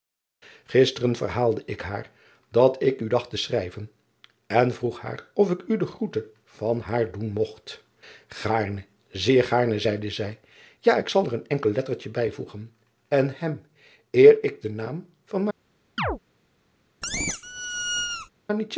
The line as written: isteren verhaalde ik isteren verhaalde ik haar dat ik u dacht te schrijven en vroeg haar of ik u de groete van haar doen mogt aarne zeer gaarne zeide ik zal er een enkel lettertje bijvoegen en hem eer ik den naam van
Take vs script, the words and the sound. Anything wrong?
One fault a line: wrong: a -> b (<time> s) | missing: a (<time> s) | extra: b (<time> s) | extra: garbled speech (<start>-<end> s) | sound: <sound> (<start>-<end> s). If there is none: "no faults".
missing: isteren verhaalde ik (1.8 s)
extra: zij ja (10.1 s)
sound: chirp (16.0-16.2 s)
sound: squeak (17.0-18.3 s)